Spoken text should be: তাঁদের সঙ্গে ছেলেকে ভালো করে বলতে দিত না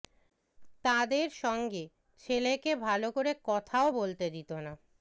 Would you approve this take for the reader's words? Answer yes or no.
no